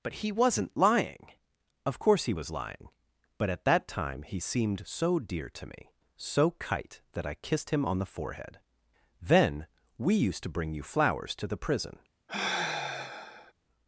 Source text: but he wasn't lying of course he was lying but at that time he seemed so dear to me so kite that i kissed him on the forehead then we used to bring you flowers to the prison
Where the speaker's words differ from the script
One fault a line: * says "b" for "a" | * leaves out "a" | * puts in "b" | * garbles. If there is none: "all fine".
all fine